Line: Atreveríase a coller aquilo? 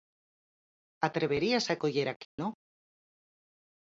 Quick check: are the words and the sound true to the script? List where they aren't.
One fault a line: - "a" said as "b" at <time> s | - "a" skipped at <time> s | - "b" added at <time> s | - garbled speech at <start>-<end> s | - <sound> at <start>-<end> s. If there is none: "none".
- dropout at 2.2-2.4 s